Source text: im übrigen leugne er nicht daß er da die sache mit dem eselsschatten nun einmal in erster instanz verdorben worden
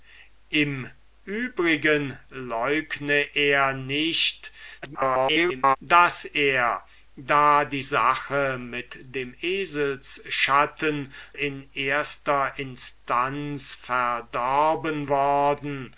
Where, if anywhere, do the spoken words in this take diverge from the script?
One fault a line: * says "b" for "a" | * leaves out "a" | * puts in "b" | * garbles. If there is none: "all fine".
* garbles
* leaves out "nun einmal"